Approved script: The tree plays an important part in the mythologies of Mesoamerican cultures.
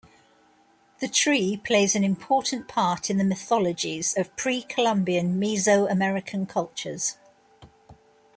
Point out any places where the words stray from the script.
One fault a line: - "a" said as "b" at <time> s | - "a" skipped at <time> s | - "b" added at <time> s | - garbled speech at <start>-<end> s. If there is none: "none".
- "pre Columbian" added at 4.4 s